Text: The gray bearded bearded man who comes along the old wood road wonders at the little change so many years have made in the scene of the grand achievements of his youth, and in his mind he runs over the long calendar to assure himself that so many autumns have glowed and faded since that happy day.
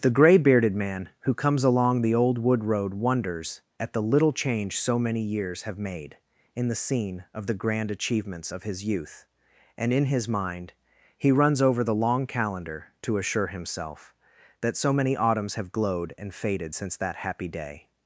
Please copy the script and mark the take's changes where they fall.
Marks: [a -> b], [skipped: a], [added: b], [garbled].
The gray bearded [skipped: bearded] man who comes along the old wood road wonders at the little change so many years have made in the scene of the grand achievements of his youth, and in his mind he runs over the long calendar to assure himself that so many autumns have glowed and faded since that happy day.